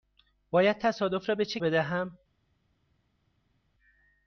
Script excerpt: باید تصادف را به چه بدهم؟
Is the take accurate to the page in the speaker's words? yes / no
yes